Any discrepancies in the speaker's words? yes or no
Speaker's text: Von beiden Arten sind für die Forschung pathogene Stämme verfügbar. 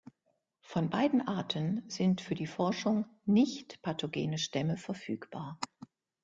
yes